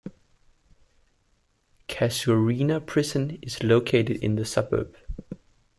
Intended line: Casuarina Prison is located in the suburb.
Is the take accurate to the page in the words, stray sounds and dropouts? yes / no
yes